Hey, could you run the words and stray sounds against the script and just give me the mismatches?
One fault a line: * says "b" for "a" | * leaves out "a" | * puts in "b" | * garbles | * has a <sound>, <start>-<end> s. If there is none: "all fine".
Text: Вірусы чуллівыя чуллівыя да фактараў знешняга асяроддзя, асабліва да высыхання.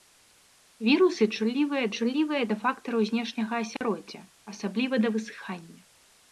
* has a dropout, 3.8-3.8 s